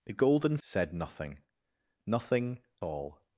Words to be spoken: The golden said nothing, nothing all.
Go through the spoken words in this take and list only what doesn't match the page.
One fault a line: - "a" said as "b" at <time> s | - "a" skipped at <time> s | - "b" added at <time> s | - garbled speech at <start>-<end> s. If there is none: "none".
none